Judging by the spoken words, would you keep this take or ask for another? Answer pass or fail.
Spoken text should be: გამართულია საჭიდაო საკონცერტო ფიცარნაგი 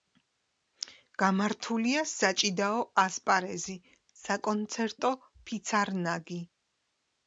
fail